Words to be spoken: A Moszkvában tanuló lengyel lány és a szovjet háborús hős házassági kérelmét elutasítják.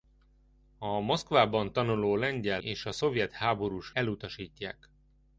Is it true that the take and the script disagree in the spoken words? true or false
true